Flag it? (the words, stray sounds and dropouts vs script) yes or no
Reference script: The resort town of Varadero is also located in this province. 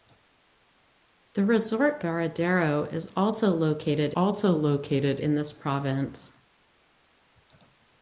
yes